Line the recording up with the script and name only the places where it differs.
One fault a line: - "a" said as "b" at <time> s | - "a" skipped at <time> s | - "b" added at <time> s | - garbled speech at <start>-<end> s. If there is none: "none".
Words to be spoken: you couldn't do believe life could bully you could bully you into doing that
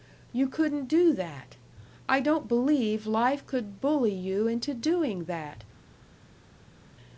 - "believe life could bully you" said as "that i don't believe life" at 1.1 s